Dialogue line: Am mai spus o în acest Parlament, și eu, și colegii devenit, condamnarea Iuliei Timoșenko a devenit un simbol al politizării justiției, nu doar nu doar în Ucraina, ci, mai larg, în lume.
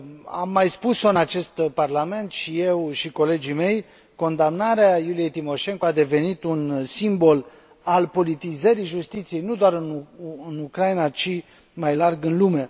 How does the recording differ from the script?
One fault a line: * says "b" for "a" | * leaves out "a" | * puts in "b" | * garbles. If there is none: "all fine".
* says "mei" for "devenit"
* leaves out "nu doar"